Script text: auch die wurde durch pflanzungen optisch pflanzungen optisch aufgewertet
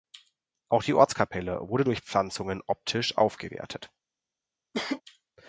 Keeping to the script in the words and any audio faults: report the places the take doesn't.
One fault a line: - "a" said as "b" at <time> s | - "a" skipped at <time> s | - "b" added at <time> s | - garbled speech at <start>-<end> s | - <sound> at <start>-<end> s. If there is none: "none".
- "ortskapelle" added at 0.9 s
- "pflanzungen optisch" skipped at 3.2 s
- cough at 4.7-5.0 s